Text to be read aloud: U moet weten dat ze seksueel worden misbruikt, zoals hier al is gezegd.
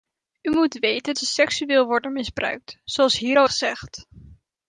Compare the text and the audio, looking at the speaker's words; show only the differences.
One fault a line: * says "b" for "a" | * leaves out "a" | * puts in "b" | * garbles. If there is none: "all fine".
* leaves out "dat"
* leaves out "is"